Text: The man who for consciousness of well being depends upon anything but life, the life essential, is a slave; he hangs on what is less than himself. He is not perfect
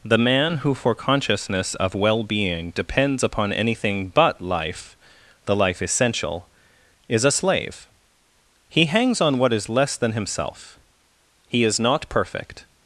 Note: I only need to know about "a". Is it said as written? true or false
true